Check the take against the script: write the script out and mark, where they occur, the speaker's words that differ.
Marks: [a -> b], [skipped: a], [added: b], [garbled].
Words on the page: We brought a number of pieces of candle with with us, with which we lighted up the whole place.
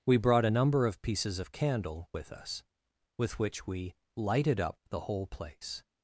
We brought a number of pieces of candle with [skipped: with] us, with which we lighted up the whole place.